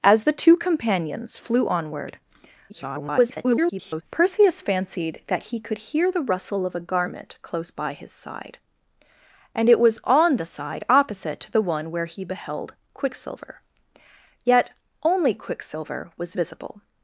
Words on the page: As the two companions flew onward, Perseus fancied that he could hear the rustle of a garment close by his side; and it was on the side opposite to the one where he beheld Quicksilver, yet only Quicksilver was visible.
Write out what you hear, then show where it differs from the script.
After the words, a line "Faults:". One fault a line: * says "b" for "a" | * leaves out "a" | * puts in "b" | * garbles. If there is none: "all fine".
As the two companions flew onward, [garbled] Perseus fancied that he could hear the rustle of a garment close by his side; and it was on the side opposite to the one where he beheld Quicksilver, yet only Quicksilver was visible.
Faults:
* garbles